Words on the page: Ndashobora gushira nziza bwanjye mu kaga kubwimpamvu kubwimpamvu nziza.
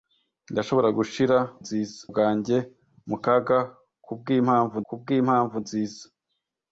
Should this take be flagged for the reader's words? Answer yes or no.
no